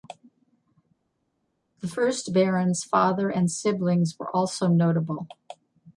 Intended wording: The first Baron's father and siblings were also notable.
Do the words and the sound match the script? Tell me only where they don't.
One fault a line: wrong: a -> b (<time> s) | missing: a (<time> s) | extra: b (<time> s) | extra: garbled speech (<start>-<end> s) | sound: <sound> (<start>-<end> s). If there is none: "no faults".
no faults